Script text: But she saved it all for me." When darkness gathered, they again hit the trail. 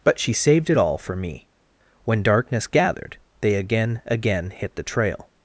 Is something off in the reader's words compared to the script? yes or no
yes